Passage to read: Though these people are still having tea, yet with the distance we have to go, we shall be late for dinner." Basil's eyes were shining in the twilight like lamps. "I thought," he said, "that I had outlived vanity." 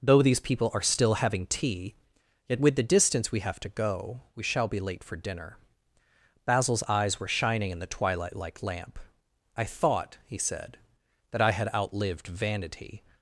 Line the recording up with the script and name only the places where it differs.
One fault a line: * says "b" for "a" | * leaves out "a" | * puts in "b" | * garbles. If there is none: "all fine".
* says "lamp" for "lamps"